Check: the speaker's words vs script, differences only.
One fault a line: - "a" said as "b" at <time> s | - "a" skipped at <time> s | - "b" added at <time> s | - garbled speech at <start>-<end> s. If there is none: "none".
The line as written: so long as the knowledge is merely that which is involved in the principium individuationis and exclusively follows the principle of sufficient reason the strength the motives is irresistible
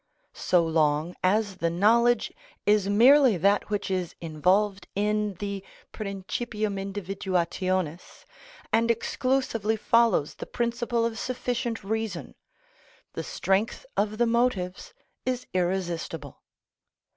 - "of" added at 14.0 s